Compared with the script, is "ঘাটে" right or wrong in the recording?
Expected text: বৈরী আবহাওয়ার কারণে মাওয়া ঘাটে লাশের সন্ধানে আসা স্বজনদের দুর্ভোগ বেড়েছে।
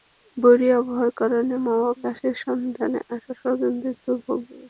wrong